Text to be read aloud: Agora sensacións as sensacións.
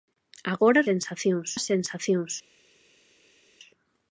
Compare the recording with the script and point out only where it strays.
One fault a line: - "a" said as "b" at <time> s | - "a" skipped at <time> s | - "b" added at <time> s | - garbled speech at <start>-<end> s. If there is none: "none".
none